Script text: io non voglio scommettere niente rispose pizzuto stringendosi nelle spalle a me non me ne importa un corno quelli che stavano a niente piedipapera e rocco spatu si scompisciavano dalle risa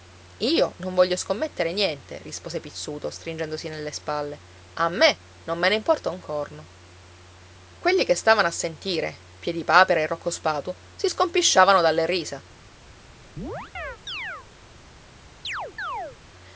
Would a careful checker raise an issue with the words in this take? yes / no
yes